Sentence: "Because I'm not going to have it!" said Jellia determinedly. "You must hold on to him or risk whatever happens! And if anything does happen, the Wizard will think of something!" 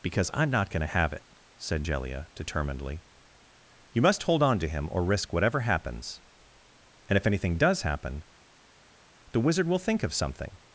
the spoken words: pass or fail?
pass